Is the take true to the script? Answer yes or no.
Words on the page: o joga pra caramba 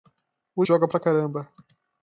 yes